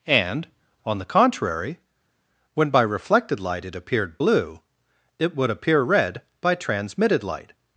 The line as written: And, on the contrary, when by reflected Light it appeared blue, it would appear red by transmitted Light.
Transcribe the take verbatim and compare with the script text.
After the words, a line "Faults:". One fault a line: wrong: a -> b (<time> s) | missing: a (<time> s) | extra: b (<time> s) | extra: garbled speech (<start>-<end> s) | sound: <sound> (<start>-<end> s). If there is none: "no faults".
And, on the contrary, when by reflected Light it appeared blue, it would appear red by transmitted Light.
Faults:
no faults